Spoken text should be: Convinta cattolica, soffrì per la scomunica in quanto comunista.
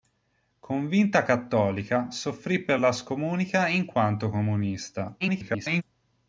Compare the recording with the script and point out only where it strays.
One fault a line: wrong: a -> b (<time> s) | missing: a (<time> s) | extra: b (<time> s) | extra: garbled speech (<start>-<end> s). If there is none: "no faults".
extra: garbled speech (5.2-5.8 s)